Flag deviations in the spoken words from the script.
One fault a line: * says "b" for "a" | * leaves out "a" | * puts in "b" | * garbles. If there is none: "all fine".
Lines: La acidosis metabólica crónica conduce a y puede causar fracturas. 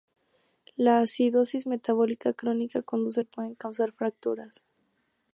all fine